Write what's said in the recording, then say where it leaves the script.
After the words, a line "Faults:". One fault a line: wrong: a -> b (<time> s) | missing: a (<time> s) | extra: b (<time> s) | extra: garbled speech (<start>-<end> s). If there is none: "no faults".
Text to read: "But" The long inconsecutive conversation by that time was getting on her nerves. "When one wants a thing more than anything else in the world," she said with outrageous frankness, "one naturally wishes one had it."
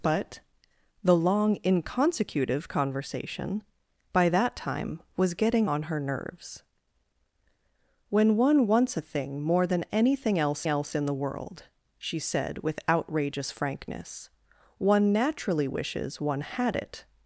"But" The long inconsecutive conversation by that time was getting on her nerves. "When one wants a thing more than anything else else in the world," she said with outrageous frankness, "one naturally wishes one had it."
Faults:
extra: else (10.7 s)